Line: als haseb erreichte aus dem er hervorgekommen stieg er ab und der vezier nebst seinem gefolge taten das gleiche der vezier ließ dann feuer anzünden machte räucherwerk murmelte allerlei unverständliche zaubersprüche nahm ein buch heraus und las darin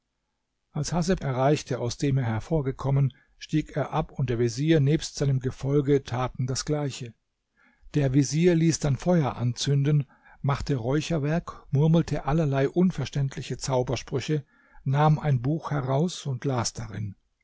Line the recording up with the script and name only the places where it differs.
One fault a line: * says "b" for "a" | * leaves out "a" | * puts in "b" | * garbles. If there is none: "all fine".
all fine